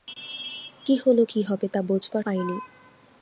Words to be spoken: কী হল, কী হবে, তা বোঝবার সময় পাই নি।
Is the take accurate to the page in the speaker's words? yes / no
no